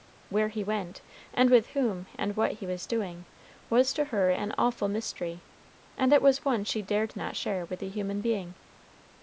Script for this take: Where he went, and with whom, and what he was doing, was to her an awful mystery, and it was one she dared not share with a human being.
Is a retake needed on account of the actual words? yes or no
no